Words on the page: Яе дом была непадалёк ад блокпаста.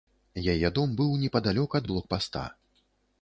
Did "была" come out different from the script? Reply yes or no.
yes